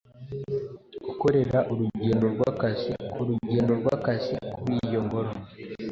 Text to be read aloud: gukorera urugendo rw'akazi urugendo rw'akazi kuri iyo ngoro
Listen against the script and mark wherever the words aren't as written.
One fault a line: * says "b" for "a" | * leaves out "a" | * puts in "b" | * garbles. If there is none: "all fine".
all fine